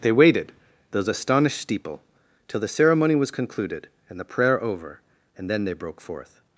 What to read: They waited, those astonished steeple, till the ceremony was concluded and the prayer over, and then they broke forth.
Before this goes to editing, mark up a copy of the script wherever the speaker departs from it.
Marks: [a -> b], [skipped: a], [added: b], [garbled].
They waited, those astonished steeple, till the ceremony was concluded and the prayer over, and then they broke forth.